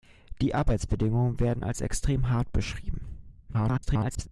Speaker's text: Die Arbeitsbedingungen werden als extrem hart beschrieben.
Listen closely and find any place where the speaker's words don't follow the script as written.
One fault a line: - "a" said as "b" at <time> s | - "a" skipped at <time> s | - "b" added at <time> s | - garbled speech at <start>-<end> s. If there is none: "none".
- garbled speech at 3.5-4.3 s